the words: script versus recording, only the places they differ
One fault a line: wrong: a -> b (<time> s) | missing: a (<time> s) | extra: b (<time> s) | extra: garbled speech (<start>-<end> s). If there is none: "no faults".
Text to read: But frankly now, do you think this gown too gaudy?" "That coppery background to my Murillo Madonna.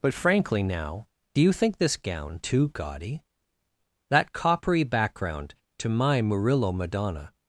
no faults